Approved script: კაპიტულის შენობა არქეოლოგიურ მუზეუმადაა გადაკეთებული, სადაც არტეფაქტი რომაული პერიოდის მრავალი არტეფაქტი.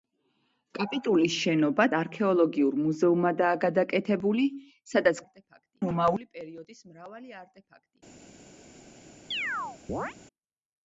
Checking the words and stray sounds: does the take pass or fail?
fail